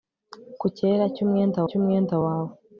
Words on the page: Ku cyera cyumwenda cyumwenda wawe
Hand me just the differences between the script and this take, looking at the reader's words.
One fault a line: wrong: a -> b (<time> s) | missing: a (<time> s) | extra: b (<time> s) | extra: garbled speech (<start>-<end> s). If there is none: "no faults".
no faults